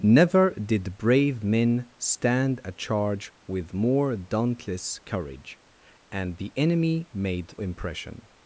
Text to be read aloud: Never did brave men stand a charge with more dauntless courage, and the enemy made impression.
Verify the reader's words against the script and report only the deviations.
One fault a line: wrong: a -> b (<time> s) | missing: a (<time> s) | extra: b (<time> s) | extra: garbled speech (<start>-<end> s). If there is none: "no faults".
no faults